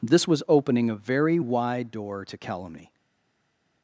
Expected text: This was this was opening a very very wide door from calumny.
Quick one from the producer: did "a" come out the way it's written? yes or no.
yes